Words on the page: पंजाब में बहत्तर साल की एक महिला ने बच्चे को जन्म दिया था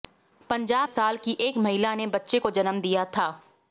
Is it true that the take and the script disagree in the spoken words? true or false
true